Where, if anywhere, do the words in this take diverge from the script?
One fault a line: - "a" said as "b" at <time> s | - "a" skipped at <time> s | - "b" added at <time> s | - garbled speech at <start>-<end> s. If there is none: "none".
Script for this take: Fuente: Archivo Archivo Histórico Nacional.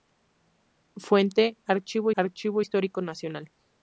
none